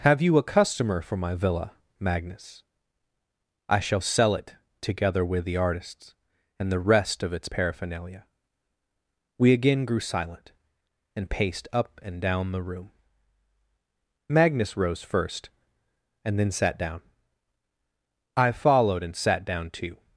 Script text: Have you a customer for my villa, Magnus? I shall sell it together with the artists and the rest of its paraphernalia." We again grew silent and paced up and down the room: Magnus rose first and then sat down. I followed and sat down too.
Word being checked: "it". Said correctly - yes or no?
yes